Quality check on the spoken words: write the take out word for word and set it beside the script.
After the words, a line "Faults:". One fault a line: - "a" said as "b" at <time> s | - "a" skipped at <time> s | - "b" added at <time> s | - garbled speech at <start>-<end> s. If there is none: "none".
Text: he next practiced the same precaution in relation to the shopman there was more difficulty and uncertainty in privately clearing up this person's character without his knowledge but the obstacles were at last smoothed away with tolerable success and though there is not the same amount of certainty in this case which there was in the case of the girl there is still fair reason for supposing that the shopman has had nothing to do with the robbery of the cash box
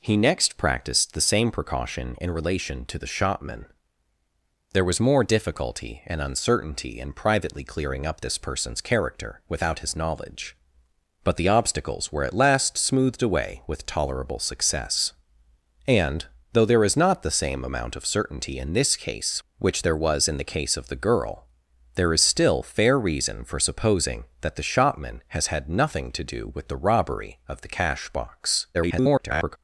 he next practiced the same precaution in relation to the shopman there was more difficulty and uncertainty in privately clearing up this person's character without his knowledge but the obstacles were at last smoothed away with tolerable success and though there is not the same amount of certainty in this case which there was in the case of the girl there is still fair reason for supposing that the shopman has had nothing to do with the robbery of the cash box [garbled]
Faults:
- garbled speech at 28.7-29.6 s